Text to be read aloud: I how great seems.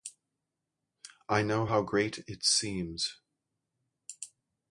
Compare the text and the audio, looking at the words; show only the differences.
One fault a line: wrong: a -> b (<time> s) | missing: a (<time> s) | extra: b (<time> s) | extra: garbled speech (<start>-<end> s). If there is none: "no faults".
extra: know (1.4 s)
extra: it (2.3 s)